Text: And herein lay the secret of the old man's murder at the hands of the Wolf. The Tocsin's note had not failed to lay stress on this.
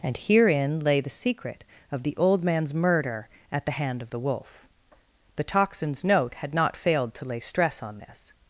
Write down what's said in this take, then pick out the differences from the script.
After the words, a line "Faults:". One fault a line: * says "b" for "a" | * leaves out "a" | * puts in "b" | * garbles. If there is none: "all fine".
And herein lay the secret of the old man's murder at the hand of the Wolf. The Tocsin's note had not failed to lay stress on this.
Faults:
* says "hand" for "hands"